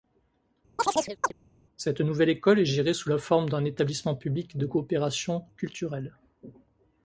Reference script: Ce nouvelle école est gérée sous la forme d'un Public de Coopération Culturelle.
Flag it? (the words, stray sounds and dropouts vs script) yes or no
yes